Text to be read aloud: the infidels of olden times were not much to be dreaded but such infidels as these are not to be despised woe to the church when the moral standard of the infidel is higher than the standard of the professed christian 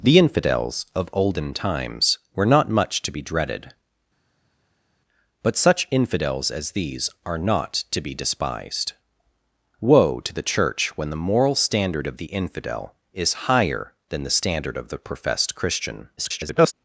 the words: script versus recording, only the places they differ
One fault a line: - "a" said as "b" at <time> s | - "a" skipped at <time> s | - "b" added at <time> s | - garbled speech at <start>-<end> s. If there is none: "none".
- garbled speech at 16.2-16.7 s